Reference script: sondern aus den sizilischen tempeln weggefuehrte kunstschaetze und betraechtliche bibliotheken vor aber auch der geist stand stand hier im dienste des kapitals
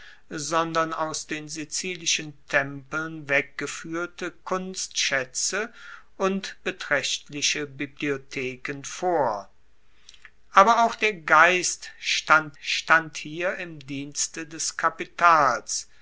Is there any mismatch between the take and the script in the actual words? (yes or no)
no